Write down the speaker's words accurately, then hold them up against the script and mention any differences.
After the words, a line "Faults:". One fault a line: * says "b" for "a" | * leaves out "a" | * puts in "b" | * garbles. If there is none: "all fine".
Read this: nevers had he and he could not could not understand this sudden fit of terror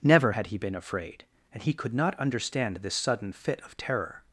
never had he been afraid and he could not understand this sudden fit of terror
Faults:
* says "never" for "nevers"
* puts in "been afraid"
* leaves out "could not"